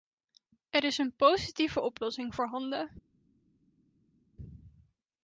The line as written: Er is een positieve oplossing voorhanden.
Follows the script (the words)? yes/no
yes